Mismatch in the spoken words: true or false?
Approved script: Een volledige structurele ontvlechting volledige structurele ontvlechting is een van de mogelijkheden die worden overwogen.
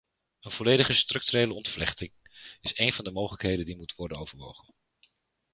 true